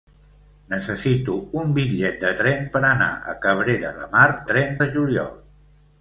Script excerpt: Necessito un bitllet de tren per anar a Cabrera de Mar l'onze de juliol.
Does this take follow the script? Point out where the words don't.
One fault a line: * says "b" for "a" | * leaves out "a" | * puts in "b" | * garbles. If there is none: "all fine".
* says "tren" for "l'onze"